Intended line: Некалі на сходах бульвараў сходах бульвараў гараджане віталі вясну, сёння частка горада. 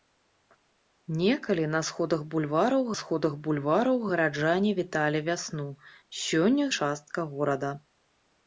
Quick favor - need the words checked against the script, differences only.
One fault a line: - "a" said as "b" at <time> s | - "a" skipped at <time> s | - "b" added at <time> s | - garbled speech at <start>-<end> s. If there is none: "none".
none